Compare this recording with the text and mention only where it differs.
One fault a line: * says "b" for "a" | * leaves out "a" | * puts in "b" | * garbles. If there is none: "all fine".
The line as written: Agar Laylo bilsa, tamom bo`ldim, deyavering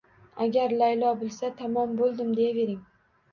all fine